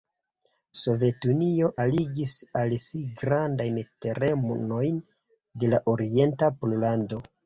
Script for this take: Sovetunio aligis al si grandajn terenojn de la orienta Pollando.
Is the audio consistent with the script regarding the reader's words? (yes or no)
yes